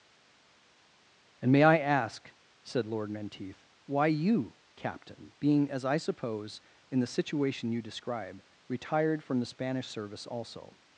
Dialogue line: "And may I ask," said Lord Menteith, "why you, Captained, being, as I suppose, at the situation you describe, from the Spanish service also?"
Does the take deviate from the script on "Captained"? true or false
true